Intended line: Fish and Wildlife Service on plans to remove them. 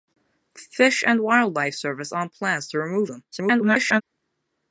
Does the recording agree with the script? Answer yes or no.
no